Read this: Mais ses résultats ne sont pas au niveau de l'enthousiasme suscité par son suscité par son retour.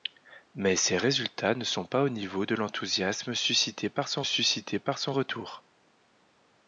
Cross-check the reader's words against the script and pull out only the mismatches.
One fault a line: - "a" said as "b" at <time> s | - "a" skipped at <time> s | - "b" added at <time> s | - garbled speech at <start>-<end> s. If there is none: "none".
none